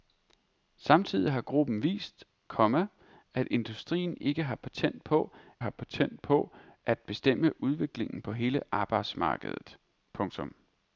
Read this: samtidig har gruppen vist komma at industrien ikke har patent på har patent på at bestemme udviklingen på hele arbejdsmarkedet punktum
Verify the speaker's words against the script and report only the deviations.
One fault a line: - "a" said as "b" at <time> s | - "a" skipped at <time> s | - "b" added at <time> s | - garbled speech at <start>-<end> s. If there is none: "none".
none